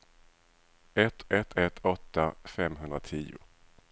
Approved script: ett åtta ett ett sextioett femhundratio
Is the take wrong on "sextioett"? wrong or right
wrong